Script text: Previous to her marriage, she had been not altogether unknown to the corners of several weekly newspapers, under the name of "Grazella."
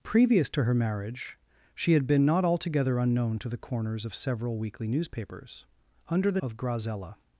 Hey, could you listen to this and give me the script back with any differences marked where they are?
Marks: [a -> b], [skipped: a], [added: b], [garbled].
Previous to her marriage, she had been not altogether unknown to the corners of several weekly newspapers, under the [skipped: name] of "Grazella."